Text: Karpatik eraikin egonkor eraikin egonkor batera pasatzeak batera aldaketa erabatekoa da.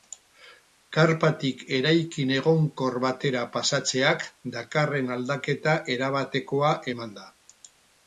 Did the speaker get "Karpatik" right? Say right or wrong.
right